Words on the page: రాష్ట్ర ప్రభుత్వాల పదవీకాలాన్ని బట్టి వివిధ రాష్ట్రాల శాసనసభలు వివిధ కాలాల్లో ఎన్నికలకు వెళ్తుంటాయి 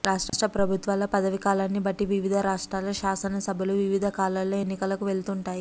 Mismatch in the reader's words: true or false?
false